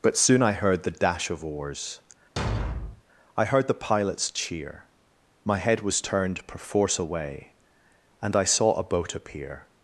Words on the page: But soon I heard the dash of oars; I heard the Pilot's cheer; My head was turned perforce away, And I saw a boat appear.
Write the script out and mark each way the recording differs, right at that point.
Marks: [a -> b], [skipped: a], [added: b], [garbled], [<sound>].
But soon I heard the dash of oars; [thud] I heard the Pilot's cheer; My head was turned perforce away, And I saw a boat appear.